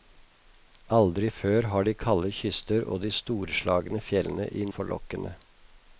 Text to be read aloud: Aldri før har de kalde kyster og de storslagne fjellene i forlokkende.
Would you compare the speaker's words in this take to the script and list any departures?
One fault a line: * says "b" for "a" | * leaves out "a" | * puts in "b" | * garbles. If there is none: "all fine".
all fine